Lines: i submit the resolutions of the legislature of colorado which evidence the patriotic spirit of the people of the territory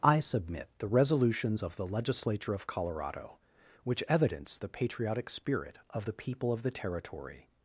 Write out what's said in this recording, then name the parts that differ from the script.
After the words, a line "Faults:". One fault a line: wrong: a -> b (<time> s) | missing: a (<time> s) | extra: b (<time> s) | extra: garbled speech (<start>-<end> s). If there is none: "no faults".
i submit the resolutions of the legislature of colorado which evidence the patriotic spirit of the people of the territory
Faults:
no faults